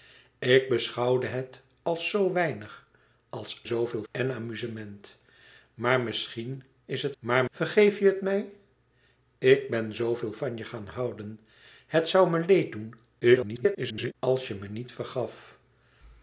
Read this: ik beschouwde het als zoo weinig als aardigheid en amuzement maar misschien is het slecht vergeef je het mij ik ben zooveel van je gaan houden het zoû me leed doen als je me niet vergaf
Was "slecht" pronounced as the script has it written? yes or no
no